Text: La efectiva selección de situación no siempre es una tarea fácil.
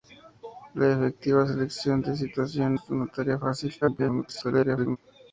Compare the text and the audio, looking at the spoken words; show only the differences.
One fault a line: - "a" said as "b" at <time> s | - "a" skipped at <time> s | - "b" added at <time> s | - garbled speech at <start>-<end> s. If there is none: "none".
- "no siempre" skipped at 2.8 s
- garbled speech at 3.8-5.0 s